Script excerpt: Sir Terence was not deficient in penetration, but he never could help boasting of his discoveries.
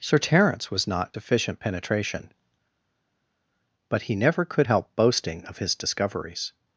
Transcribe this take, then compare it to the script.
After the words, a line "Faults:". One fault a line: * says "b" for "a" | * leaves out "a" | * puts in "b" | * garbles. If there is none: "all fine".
Sir Terence was not deficient penetration, but he never could help boasting of his discoveries.
Faults:
* leaves out "in"